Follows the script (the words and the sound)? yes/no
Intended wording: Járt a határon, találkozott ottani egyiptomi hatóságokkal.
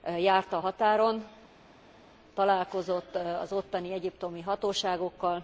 no